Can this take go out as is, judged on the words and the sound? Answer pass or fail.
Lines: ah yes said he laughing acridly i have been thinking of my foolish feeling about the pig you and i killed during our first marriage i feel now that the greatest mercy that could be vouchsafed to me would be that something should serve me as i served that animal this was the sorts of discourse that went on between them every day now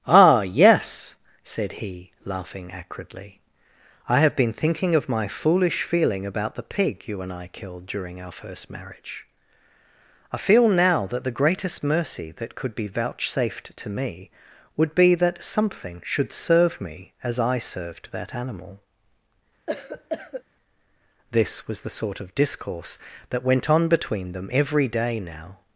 fail